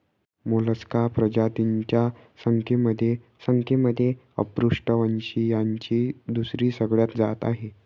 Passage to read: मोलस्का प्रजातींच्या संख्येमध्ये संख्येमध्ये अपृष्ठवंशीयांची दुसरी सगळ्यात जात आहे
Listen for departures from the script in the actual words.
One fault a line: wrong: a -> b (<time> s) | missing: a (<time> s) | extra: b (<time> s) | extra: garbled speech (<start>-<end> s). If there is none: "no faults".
no faults